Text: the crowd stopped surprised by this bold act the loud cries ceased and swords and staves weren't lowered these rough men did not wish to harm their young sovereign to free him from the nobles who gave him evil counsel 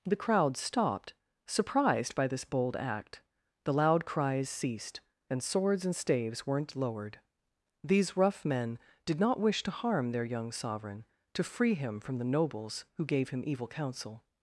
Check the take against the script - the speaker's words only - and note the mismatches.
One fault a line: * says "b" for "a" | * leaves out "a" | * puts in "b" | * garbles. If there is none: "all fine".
all fine